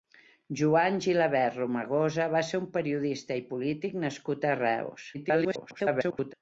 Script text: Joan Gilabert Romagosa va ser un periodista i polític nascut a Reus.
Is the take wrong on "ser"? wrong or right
right